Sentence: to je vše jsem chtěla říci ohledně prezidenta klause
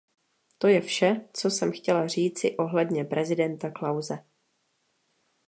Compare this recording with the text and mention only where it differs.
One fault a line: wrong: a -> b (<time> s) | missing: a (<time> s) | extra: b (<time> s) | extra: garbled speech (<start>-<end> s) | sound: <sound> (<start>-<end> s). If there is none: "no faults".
extra: co (1.3 s)